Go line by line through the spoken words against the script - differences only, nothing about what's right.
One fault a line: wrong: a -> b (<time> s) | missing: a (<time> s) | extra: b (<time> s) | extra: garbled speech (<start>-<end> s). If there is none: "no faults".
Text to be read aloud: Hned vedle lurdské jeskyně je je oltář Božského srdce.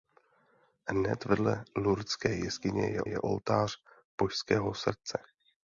no faults